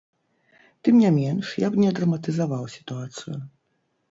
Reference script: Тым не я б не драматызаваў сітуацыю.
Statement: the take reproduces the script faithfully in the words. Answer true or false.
false